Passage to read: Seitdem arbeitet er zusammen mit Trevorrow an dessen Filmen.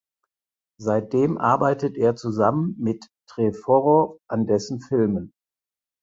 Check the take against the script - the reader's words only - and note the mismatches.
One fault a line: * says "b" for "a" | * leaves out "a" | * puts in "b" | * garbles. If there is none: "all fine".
all fine